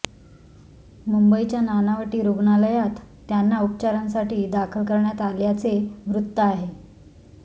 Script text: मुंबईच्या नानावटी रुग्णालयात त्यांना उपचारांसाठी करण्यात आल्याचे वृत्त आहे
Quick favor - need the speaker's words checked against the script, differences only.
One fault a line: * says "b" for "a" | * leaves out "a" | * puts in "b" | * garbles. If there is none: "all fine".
* puts in "दाखल"